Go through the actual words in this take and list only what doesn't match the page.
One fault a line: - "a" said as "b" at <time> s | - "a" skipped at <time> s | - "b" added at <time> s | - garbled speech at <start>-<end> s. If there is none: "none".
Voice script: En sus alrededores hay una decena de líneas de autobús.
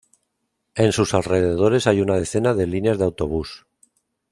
none